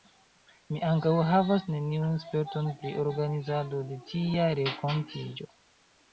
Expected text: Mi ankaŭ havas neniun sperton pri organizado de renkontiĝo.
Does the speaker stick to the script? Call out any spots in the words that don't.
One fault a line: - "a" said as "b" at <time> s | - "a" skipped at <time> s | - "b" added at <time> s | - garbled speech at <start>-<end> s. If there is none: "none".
- "tia" added at 4.1 s